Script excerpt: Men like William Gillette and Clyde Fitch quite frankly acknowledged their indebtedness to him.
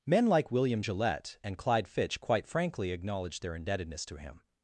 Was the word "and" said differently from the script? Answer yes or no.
no